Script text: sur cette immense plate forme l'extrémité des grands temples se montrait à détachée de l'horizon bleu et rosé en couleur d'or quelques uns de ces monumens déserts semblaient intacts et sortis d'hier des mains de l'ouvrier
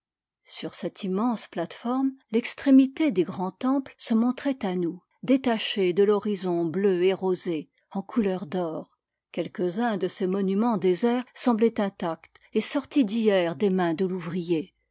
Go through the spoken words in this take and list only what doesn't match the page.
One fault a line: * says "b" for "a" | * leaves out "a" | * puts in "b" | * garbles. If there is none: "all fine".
* puts in "nous"